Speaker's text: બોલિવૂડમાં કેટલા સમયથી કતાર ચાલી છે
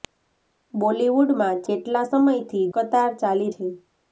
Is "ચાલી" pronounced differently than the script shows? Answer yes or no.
no